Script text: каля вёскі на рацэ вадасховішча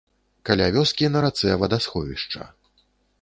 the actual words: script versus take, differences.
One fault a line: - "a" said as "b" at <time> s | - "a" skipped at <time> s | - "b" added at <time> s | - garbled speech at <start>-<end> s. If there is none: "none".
none